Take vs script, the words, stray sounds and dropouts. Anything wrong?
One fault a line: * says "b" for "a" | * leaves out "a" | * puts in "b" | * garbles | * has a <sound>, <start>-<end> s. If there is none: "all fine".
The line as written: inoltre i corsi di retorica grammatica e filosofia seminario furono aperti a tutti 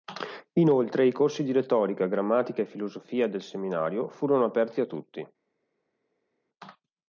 * puts in "del"